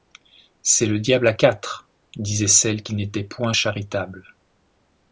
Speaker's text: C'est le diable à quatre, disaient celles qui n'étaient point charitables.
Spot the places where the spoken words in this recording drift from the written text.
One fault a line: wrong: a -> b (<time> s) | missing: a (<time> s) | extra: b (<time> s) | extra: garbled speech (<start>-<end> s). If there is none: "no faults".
no faults